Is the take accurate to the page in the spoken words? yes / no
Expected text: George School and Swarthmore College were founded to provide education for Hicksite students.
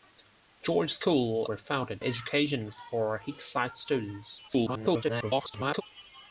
no